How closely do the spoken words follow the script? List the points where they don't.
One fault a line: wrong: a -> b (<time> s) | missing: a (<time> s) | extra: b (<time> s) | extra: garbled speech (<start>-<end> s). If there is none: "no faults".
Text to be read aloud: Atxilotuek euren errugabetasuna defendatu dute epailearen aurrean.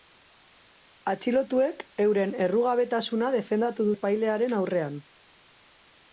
missing: dute (3.9 s)